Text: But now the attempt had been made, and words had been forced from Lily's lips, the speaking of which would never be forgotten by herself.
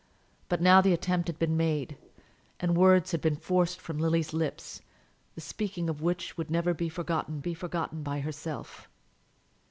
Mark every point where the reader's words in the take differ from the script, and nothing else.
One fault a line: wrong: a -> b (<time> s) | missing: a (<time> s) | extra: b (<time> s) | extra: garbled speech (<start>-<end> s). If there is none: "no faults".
extra: be forgotten (7.4 s)